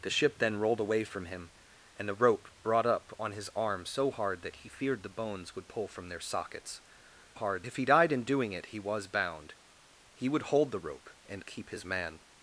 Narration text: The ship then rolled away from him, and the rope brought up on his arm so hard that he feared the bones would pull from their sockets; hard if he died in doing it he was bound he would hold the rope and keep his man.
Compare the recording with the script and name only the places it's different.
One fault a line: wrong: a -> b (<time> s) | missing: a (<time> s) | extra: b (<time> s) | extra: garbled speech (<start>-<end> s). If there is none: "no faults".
no faults